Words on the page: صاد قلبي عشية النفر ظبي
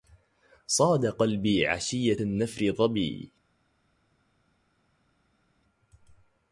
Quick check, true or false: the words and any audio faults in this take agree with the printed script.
true